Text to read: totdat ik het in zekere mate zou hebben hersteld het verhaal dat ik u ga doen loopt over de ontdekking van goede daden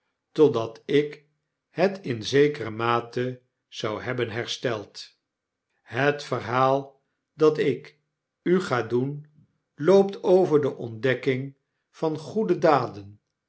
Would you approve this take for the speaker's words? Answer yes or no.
yes